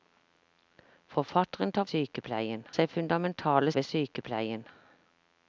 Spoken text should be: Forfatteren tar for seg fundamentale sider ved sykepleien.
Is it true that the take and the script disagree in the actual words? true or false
true